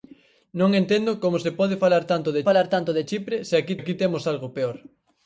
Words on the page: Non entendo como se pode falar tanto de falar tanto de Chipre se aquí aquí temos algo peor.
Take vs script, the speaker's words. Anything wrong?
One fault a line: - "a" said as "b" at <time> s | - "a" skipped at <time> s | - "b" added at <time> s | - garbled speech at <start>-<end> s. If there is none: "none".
none